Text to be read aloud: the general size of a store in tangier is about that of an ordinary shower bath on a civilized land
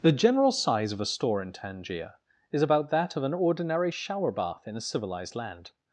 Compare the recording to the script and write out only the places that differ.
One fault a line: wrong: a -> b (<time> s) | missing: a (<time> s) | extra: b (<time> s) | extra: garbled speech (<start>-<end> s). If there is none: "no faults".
wrong: on -> in (4.6 s)